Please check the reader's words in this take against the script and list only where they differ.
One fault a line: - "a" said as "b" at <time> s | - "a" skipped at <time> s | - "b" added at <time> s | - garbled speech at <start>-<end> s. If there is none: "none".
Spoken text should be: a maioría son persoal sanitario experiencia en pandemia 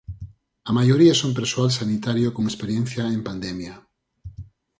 - "con" added at 2.3 s